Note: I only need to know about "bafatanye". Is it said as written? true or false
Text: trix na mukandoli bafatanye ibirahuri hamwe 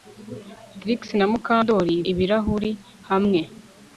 false